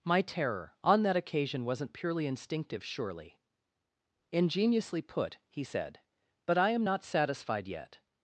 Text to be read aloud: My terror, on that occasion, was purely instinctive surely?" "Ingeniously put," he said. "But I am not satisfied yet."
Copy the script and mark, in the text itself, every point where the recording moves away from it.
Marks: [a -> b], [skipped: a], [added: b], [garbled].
My terror, on that occasion, [was -> wasn't] purely instinctive surely?" "Ingeniously put," he said. "But I am not satisfied yet."